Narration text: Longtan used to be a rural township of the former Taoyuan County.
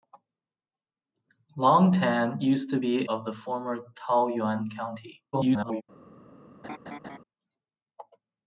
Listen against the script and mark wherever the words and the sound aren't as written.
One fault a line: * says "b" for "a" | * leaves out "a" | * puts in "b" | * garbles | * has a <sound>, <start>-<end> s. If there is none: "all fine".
* leaves out "a rural township"
* garbles
* has a laugh, 6.6-7.2 s